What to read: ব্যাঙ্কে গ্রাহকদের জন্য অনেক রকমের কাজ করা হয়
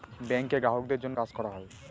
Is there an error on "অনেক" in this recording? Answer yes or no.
yes